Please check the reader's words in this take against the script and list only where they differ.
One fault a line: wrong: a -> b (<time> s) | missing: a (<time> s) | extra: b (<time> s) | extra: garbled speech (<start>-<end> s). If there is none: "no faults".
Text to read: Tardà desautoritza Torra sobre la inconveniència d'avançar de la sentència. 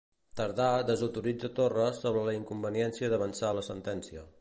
no faults